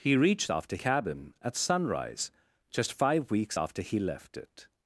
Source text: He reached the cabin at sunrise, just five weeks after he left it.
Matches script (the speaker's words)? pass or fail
fail